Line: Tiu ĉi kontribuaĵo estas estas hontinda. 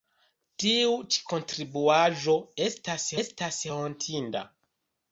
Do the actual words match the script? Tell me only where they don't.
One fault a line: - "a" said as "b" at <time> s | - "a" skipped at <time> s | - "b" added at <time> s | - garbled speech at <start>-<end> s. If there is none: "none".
none